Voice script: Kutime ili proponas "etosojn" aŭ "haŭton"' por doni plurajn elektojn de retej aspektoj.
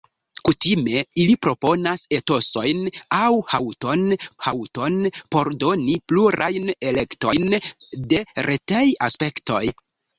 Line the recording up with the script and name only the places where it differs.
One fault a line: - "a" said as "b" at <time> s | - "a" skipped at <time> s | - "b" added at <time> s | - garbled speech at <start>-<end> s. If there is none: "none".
- "haŭton" added at 4.5 s